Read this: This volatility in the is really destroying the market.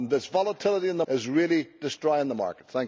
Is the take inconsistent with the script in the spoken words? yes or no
no